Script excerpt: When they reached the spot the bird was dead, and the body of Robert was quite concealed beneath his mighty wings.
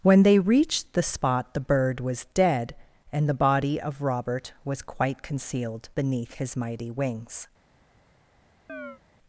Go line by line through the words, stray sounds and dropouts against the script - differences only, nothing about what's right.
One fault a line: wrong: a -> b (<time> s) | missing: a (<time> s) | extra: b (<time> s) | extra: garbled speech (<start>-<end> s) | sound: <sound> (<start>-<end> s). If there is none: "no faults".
sound: chirp (8.7-9.0 s)